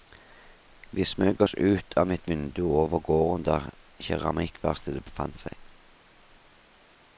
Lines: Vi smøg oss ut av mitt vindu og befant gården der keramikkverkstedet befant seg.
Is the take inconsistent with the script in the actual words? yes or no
yes